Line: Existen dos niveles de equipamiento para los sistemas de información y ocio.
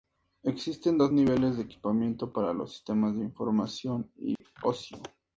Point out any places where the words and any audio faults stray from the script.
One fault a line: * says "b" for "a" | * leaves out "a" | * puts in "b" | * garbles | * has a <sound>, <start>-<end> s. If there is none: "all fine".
* has a dropout, 4.4-4.4 s